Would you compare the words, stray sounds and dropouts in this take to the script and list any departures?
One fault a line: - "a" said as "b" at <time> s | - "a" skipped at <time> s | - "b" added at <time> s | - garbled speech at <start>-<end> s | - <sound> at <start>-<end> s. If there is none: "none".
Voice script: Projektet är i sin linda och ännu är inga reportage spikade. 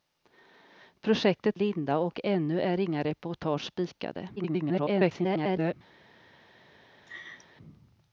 - "är i sin" skipped at 1.6 s
- garbled speech at 4.4-5.7 s
- laugh at 7.1-7.5 s